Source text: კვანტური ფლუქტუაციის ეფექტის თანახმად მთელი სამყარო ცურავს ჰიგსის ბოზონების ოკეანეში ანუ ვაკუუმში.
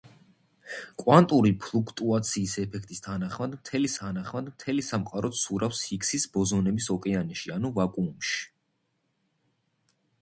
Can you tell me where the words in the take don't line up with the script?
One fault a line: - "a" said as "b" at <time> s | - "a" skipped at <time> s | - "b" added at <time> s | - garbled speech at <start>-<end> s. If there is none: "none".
- "თანახმად მთელი" added at 4.0 s